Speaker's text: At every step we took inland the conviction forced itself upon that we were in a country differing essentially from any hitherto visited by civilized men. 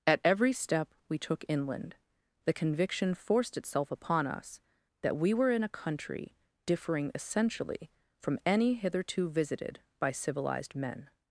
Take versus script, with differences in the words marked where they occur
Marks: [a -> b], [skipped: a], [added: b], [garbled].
At every step we took inland the conviction forced itself upon [added: us] that we were in a country differing essentially from any hitherto visited by civilized men.